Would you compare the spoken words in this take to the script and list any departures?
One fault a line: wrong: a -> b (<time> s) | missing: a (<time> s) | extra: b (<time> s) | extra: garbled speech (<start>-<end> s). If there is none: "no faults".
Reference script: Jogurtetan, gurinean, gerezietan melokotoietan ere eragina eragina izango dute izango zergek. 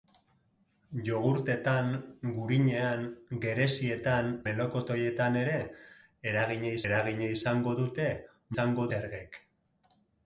no faults